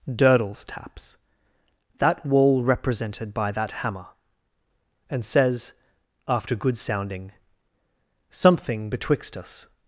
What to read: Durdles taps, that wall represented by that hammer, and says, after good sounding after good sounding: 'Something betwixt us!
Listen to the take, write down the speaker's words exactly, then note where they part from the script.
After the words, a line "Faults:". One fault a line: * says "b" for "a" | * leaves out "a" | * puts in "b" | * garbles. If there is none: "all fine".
Durdles taps, that wall represented by that hammer, and says, after good sounding: 'Something betwixt us!
Faults:
* leaves out "after good sounding"